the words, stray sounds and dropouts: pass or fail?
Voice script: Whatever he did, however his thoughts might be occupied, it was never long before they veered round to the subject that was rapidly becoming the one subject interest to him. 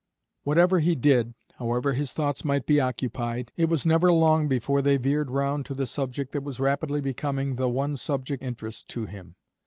pass